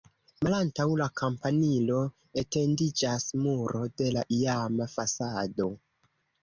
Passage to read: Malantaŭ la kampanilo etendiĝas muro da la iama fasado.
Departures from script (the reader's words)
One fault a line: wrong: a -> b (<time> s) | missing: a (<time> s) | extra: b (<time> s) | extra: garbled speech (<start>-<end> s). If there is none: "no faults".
wrong: da -> de (4.0 s)